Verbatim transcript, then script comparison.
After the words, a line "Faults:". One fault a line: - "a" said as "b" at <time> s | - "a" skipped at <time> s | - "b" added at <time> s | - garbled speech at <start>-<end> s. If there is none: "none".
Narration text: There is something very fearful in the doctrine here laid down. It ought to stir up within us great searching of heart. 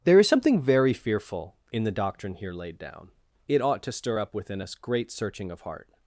There is something very fearful in the doctrine here laid down. It ought to stir up within us great searching of heart.
Faults:
none